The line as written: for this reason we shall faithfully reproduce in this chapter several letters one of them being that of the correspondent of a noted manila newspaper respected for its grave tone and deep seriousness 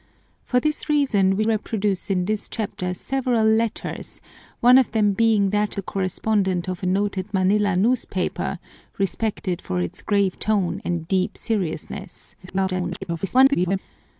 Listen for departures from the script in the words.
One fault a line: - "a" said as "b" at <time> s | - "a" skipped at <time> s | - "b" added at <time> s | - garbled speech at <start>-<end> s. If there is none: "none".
- "shall faithfully" skipped at 1.4 s
- "of" skipped at 5.8 s
- garbled speech at 12.4-13.8 s